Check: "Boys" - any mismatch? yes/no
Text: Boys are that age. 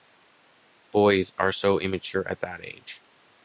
no